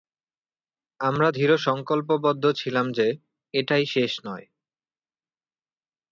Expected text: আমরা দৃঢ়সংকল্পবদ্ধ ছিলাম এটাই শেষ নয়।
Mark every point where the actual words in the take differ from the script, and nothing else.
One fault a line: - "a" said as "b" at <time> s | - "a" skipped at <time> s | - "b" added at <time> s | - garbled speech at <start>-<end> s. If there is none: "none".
- "যে" added at 2.9 s